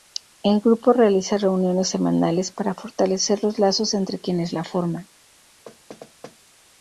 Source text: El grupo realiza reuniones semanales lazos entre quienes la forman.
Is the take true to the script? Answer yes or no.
no